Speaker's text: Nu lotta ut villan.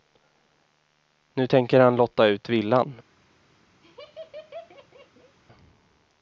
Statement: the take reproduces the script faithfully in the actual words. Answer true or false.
false